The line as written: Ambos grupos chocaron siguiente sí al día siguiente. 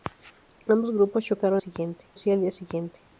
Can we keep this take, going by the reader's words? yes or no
yes